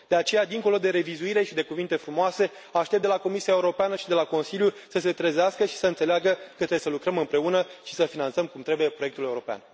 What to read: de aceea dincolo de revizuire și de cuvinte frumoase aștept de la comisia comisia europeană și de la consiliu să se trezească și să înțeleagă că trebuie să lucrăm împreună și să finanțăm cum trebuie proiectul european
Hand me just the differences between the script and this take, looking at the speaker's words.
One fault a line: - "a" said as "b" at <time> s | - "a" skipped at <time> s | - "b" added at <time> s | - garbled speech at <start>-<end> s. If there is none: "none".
- "comisia" skipped at 3.5 s